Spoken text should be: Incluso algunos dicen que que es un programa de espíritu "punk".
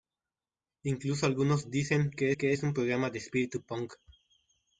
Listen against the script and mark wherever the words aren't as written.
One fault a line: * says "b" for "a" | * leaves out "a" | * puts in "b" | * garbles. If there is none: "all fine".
all fine